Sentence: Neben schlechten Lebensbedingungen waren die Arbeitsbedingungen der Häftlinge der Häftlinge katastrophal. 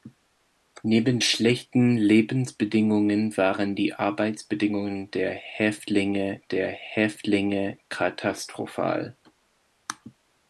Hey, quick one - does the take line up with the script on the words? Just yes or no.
yes